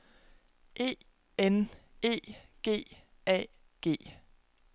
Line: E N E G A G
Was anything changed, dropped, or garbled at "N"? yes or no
no